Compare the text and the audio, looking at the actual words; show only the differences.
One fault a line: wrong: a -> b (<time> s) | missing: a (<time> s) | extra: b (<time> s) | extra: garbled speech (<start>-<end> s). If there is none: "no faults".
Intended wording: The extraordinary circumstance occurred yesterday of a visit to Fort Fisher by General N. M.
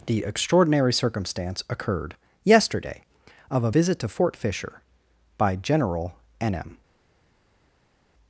no faults